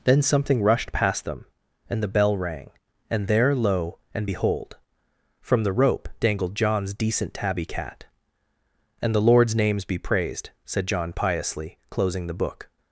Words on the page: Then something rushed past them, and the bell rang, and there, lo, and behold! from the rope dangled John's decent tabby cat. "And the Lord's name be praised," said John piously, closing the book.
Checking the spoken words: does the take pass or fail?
fail